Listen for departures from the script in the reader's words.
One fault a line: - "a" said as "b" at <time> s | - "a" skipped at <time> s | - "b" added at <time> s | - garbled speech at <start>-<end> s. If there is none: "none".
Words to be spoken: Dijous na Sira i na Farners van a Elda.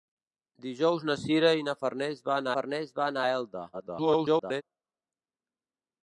- "Farners van" added at 2.6 s
- garbled speech at 3.7-4.6 s